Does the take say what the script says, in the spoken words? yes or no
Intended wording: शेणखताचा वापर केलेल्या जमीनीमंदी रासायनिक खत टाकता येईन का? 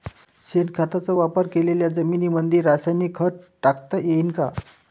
yes